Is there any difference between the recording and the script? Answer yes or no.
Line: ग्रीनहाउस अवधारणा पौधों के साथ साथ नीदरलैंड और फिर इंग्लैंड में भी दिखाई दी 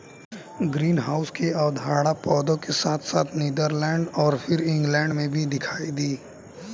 yes